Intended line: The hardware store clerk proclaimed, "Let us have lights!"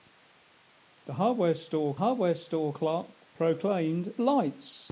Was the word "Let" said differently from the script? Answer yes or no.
yes